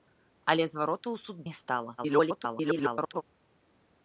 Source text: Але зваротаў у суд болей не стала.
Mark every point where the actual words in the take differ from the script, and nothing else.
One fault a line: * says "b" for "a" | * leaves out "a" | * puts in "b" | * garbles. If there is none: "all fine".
* leaves out "болей"
* garbles